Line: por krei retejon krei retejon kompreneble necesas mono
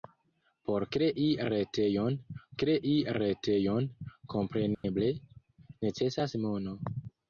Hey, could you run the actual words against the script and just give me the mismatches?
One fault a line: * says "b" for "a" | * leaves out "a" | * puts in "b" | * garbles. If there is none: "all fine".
all fine